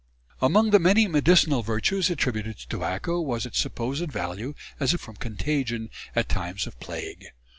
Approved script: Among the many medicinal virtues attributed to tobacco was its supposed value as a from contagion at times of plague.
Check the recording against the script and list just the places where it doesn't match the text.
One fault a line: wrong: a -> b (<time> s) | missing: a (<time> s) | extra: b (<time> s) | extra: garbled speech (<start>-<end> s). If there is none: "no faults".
no faults